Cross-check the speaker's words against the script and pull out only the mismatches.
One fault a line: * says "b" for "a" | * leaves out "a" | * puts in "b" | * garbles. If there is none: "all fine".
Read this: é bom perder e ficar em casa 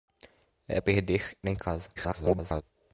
* leaves out "bom"
* leaves out "ficar"
* garbles